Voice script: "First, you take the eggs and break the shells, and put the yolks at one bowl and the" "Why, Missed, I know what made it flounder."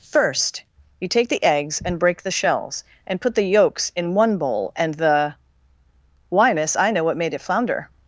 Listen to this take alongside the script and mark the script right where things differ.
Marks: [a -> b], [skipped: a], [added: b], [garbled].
"First, you take the eggs and break the shells, and put the yolks [at -> in] one bowl and the" "Why, [Missed, -> Miss] I know what made it flounder."